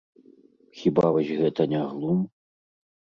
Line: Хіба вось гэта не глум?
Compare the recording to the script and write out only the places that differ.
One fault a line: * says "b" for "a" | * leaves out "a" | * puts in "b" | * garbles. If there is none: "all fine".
all fine